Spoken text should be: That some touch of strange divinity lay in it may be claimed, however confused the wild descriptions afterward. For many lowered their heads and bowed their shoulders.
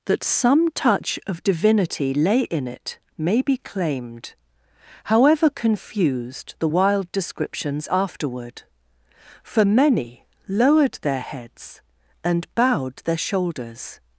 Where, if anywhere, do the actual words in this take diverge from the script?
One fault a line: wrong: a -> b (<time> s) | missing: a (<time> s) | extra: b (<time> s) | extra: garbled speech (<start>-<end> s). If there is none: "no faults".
missing: strange (1.4 s)